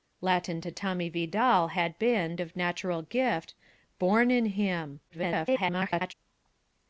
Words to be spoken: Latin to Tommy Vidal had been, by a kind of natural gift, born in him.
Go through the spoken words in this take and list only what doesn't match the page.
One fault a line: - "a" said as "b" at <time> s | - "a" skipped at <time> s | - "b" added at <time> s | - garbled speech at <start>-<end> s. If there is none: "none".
- "by a kind" skipped at 2.4 s
- garbled speech at 5.1-6.1 s